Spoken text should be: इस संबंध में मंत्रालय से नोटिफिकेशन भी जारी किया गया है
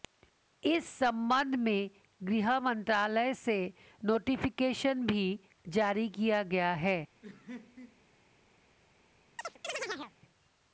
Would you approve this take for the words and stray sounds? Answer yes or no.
no